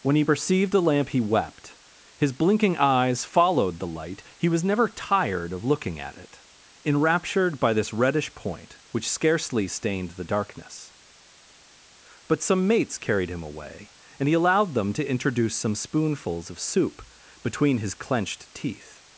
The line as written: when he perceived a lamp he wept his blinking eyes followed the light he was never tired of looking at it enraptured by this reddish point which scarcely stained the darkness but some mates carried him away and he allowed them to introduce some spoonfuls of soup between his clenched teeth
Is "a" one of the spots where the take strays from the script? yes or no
yes